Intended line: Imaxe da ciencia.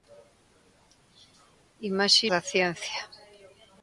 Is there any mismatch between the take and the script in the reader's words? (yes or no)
no